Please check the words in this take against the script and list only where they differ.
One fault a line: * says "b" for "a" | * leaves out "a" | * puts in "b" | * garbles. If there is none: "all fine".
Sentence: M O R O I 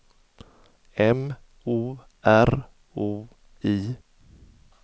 all fine